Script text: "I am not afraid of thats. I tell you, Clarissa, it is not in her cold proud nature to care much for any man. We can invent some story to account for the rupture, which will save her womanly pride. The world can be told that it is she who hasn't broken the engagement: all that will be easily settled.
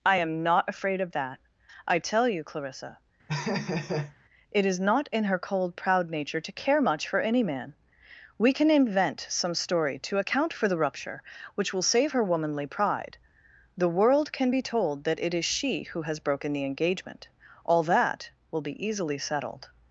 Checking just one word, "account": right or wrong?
right